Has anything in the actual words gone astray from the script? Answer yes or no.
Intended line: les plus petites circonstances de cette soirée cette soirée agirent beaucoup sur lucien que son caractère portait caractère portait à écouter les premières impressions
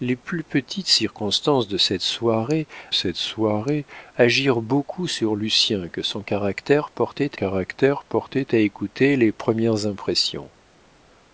no